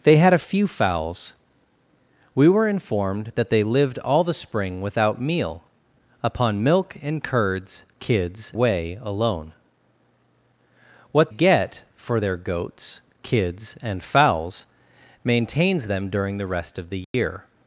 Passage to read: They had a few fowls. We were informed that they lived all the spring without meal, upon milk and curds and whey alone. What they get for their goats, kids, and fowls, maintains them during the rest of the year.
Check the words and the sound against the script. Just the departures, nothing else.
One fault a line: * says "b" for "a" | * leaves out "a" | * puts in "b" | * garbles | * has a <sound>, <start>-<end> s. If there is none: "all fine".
* says "kids" for "and"
* leaves out "they"
* has a dropout, 17.0-17.1 s